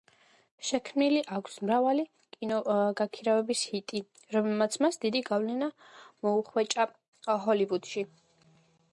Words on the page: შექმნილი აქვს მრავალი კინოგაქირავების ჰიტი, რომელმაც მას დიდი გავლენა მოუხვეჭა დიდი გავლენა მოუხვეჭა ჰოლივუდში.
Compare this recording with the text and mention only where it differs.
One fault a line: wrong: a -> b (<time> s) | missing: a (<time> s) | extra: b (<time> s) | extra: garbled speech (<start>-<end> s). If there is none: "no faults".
missing: დიდი გავლენა მოუხვეჭა (6.9 s)